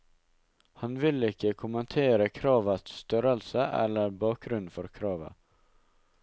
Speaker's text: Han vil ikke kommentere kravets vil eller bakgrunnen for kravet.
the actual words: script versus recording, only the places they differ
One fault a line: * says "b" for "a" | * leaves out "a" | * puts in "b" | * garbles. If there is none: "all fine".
* says "størrelse" for "vil"